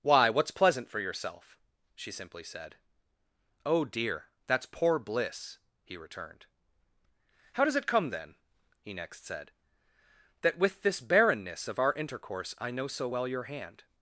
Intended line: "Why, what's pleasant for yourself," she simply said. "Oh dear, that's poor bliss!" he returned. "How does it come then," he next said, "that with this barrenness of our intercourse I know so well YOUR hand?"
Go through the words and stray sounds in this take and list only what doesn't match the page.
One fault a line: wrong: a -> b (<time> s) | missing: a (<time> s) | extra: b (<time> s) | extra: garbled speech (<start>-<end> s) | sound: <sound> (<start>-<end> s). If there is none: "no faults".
no faults